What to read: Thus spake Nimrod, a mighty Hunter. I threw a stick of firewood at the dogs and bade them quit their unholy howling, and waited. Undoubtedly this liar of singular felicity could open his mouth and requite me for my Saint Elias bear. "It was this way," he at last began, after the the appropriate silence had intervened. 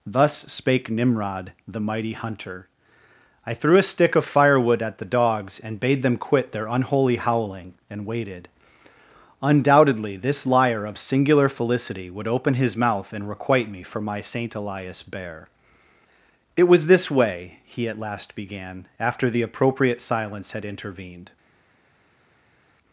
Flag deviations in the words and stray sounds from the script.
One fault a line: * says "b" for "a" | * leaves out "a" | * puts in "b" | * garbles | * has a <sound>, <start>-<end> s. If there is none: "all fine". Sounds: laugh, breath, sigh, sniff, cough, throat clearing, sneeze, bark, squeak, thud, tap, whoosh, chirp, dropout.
* says "the" for "a"
* says "would" for "could"
* leaves out "the"